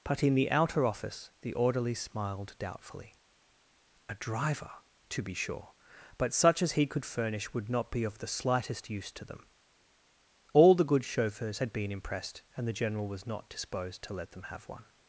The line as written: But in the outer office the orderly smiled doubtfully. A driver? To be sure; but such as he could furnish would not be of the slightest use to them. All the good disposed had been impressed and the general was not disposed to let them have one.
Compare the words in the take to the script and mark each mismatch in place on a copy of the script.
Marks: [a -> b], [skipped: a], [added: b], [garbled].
But in the outer office the orderly smiled doubtfully. A driver? To be sure; but such as he could furnish would not be of the slightest use to them. All the good [disposed -> chauffeurs] had been impressed and the general was not disposed to let them have one.